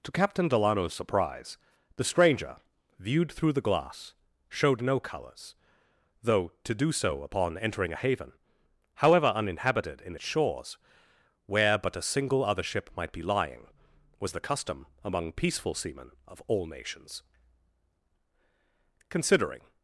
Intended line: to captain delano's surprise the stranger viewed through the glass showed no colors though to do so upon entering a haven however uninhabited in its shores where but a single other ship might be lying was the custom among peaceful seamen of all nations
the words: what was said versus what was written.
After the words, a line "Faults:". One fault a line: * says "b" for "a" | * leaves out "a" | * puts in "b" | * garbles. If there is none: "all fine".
to captain delano's surprise the stranger viewed through the glass showed no colors though to do so upon entering a haven however uninhabited in its shores where but a single other ship might be lying was the custom among peaceful seamen of all nations considering
Faults:
* puts in "considering"